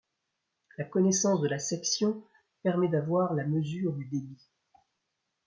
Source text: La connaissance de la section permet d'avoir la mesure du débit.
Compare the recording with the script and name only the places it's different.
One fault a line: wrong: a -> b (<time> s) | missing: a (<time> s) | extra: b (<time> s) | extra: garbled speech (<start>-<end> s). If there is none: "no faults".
no faults